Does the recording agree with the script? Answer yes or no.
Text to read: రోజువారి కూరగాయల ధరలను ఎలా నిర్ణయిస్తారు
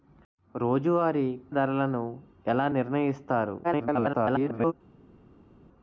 no